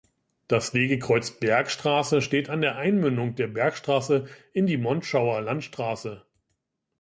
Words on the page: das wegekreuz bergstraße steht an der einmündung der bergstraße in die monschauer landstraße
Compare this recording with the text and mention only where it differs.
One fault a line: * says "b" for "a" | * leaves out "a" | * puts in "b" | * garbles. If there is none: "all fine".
all fine